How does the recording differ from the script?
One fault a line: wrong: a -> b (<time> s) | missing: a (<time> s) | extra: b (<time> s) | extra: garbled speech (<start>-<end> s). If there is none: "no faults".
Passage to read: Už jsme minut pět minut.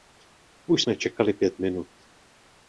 wrong: minut -> čekali (1.0 s)